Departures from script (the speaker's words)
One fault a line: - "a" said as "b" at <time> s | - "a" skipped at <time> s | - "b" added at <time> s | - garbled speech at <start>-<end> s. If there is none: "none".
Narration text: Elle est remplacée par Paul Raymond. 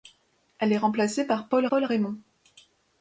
- "Paul" added at 1.7 s